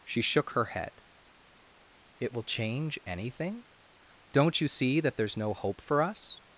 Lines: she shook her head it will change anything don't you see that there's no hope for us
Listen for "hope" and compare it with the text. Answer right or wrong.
right